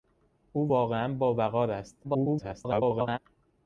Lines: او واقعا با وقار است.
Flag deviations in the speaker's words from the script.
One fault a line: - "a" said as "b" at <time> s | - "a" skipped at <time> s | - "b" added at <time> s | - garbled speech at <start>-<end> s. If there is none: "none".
- garbled speech at 2.0-3.2 s